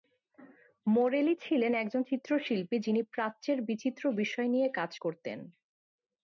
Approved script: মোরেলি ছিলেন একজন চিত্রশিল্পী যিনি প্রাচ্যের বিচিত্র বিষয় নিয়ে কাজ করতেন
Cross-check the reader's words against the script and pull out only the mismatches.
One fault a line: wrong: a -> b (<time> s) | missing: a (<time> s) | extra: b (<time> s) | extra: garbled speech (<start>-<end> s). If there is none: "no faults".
no faults